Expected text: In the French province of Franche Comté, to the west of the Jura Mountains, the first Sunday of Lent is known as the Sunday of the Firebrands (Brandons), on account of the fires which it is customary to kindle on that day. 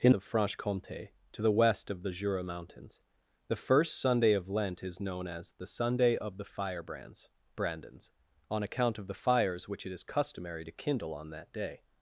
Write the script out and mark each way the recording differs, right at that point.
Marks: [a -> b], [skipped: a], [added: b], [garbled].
In [skipped: the French province] of Franche Comté, to the west of the Jura Mountains, the first Sunday of Lent is known as the Sunday of the Firebrands (Brandons), on account of the fires which it is customary to kindle on that day.